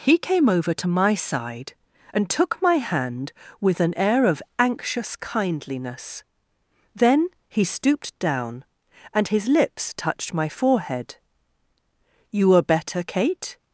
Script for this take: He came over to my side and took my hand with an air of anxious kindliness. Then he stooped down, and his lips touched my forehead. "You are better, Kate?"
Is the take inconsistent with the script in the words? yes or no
no